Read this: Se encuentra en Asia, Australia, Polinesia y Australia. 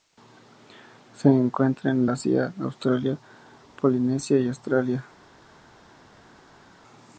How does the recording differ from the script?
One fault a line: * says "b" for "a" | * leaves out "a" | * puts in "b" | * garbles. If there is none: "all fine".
all fine